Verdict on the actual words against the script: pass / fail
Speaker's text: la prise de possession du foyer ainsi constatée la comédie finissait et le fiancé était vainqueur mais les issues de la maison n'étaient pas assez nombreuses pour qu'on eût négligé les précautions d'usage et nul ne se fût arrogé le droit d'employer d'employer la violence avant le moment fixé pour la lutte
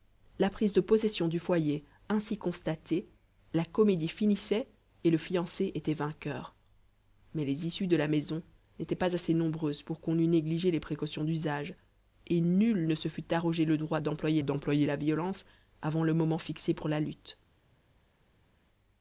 pass